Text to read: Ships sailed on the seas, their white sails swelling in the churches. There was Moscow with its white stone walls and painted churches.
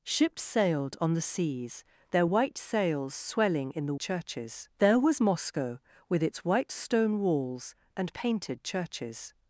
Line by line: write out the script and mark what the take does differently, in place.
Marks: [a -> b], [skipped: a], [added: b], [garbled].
Ships sailed on the seas, their white sails swelling in the churches. There was Moscow with its white stone walls and painted churches.